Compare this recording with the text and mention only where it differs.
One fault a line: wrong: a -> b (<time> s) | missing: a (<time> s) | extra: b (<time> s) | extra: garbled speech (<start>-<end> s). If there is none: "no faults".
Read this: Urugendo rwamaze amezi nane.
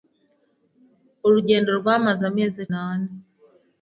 no faults